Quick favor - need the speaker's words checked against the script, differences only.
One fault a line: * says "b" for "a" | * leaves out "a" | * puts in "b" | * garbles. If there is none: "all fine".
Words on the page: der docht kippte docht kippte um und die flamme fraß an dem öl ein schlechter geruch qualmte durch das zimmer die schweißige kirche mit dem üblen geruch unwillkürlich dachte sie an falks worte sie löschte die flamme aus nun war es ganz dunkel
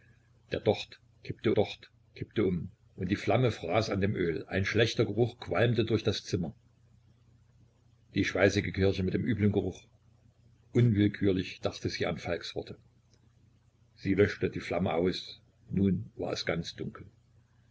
all fine